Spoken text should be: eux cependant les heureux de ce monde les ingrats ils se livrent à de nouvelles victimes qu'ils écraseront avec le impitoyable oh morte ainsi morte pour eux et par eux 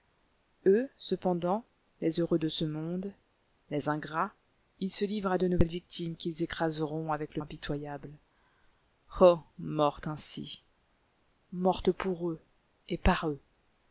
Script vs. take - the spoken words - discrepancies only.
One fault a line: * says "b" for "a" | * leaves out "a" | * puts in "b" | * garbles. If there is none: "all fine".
all fine